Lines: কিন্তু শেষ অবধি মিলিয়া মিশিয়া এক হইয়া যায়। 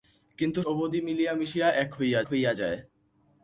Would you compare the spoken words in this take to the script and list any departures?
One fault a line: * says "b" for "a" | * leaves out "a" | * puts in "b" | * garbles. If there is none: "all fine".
* leaves out "শেষ"
* puts in "হইয়া"